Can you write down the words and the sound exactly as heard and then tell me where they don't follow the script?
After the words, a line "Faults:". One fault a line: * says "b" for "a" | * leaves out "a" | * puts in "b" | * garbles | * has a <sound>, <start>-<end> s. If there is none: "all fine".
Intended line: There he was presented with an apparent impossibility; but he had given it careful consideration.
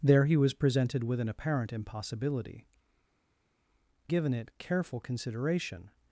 There he was presented with an apparent impossibility; given it careful consideration.
Faults:
* leaves out "but he had"